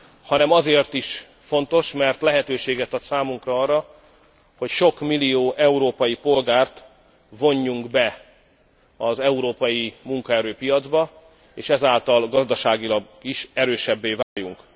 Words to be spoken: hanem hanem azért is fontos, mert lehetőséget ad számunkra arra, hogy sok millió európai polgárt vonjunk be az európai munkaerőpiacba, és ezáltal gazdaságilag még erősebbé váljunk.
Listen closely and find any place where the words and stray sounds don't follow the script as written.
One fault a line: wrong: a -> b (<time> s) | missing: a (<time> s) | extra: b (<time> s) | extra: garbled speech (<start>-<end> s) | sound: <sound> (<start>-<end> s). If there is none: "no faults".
missing: hanem (0.5 s)
wrong: még -> is (13.2 s)
sound: dropout (14.2-14.4 s)